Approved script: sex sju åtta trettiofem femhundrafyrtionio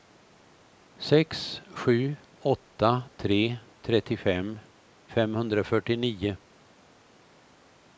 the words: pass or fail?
fail